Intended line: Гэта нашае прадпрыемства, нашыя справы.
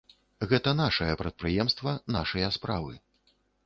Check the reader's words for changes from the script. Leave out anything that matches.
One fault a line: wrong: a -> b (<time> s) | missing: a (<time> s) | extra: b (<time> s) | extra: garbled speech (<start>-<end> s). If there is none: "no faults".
no faults